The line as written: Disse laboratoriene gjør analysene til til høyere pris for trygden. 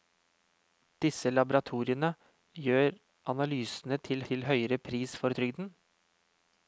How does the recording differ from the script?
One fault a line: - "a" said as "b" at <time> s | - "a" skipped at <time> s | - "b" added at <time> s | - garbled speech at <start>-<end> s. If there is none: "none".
none